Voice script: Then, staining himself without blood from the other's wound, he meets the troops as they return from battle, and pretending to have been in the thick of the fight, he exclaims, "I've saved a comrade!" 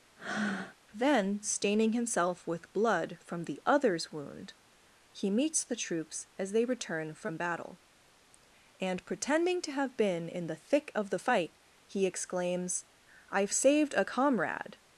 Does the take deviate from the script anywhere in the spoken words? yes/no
yes